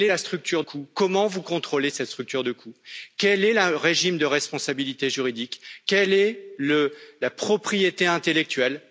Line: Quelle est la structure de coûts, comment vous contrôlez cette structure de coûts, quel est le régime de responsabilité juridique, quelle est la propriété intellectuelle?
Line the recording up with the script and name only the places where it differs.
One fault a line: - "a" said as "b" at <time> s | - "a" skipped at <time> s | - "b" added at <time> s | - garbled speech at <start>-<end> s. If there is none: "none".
- "de" skipped at 0.6 s